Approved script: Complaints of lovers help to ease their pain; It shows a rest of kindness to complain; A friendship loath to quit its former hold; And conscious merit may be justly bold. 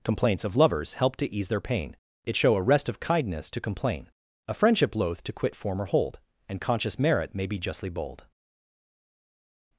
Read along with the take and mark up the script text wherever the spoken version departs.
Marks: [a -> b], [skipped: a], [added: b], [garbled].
Complaints of lovers help to ease their pain; It [shows -> show] a rest of kindness to complain; A friendship loath to quit [skipped: its] former hold; And conscious merit may be justly bold.